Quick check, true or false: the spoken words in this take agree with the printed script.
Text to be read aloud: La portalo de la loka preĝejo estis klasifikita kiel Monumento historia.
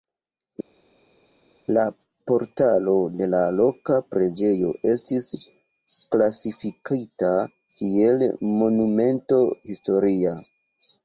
true